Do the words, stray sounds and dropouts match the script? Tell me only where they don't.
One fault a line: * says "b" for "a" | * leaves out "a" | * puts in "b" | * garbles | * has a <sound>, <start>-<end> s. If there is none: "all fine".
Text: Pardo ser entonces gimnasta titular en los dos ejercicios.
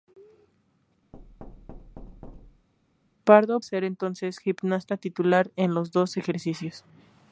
* has a thud, 1.1-2.7 s